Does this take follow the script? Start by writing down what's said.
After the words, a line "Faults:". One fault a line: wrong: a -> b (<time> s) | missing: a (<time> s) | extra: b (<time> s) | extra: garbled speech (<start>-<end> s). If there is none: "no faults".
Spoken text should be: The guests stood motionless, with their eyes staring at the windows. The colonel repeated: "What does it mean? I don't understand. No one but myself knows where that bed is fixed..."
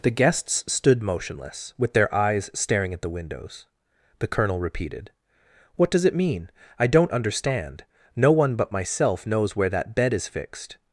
The guests stood motionless, with their eyes staring at the windows. The colonel repeated: "What does it mean? I don't understand. No one but myself knows where that bed is fixed..."
Faults:
no faults